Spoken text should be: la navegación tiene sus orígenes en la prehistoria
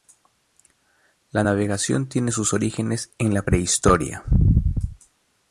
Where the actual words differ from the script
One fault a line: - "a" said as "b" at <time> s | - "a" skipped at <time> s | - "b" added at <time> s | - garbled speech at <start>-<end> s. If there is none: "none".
none